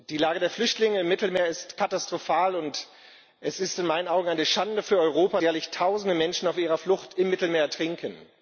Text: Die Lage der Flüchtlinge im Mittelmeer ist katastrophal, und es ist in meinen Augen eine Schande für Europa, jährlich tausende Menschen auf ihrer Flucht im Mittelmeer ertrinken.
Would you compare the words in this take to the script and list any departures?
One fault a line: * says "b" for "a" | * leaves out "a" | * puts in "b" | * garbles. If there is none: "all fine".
all fine